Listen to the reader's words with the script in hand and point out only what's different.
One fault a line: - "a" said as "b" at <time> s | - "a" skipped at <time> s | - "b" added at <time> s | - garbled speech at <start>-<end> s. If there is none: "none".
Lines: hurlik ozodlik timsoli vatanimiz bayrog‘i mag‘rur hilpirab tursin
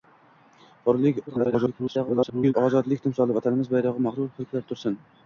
- garbled speech at 1.3-2.5 s